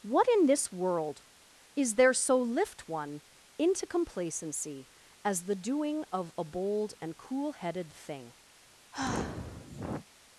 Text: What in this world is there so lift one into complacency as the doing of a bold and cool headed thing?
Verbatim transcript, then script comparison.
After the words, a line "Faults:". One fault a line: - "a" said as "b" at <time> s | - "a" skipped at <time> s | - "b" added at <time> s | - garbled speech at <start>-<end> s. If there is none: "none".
What in this world is there so lift one into complacency as the doing of a bold and cool headed thing?
Faults:
none